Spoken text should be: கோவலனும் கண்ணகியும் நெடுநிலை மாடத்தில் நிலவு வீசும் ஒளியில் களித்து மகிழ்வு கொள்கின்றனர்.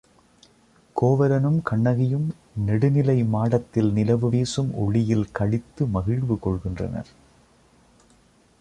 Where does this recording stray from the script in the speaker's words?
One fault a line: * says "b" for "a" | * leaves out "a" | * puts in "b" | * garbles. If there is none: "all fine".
all fine